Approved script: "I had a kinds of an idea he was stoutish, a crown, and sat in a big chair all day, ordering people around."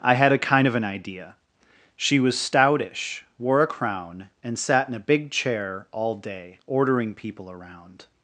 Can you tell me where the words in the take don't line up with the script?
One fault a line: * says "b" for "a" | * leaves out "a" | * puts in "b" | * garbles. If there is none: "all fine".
* says "kind" for "kinds"
* says "she" for "he"
* puts in "wore"